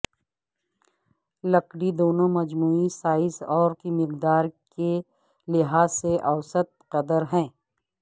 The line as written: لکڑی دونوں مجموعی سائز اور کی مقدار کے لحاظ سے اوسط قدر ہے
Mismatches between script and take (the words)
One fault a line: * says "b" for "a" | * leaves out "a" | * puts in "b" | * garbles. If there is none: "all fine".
all fine